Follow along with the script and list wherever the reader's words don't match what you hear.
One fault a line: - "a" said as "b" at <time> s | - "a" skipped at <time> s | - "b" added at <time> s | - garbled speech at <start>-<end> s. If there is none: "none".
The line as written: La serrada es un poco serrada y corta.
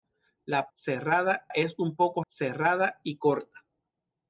none